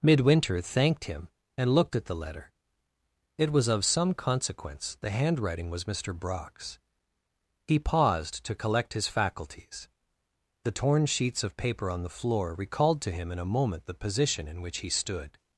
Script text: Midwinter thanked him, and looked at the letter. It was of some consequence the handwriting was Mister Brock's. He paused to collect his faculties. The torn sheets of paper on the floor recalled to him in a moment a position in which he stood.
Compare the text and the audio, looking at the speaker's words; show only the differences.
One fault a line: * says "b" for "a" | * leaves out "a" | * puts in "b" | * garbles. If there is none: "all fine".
* says "the" for "a"